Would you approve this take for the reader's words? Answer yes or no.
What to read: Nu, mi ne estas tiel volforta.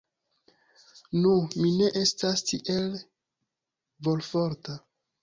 yes